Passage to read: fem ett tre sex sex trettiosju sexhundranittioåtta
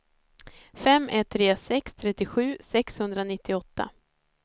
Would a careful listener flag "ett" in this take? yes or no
no